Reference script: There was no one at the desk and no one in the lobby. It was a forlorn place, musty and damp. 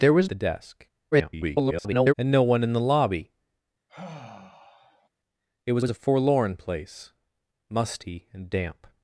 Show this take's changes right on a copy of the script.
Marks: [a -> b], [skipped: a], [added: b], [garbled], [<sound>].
There was [skipped: no one at] the desk [garbled] and no one in the lobby. [sigh] It was [added: was] a forlorn place, musty and damp.